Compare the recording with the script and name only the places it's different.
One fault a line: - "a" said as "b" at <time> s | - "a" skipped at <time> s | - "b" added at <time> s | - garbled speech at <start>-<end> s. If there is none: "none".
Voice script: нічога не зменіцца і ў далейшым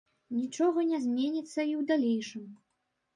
none